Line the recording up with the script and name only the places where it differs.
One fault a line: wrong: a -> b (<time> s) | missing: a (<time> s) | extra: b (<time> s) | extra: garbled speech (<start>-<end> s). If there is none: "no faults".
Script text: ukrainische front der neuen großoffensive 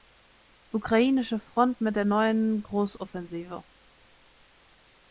extra: mit (1.8 s)